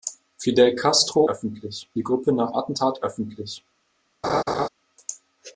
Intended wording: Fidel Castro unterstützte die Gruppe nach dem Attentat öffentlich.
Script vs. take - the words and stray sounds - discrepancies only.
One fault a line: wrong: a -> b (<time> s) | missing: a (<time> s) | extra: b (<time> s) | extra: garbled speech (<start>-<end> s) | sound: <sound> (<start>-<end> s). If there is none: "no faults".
wrong: unterstützte -> öffentlich (1.3 s)
missing: dem (2.5 s)
sound: laugh (4.2-4.7 s)